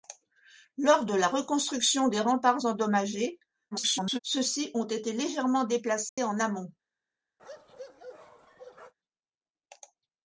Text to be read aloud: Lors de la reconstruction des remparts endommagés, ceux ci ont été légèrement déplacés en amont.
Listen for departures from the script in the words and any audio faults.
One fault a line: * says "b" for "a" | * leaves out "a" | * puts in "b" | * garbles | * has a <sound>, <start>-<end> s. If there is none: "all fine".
* garbles
* has a dropout, 6.1-6.2 s
* has a bark, 7.4-8.9 s